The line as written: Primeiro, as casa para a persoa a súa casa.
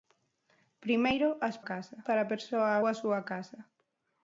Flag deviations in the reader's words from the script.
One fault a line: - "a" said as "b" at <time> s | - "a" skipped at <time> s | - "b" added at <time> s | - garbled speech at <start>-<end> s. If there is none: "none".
none